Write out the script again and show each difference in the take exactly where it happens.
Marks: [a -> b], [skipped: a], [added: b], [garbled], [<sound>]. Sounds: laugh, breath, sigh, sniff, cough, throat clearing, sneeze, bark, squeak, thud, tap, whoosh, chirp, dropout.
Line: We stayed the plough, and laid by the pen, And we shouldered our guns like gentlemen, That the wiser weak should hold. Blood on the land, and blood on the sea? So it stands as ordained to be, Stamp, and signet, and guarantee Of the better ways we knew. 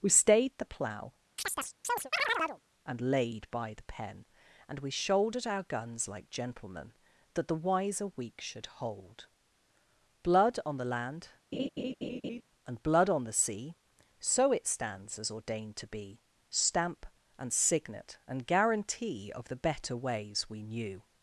We stayed the plough, [chirp] and laid by the pen, And we shouldered our guns like gentlemen, That the wiser weak should hold. Blood on the land, [laugh] and blood on the sea? So it stands as ordained to be, Stamp, and signet, and guarantee Of the better ways we knew.